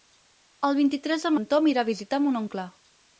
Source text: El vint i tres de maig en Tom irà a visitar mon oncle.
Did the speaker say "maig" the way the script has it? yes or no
no